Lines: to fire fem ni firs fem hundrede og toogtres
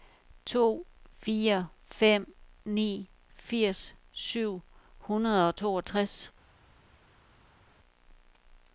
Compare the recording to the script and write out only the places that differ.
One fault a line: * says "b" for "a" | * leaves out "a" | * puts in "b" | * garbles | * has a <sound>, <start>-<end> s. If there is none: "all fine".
* says "syv" for "fem"